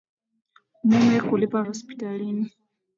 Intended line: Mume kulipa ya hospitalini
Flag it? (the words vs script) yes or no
no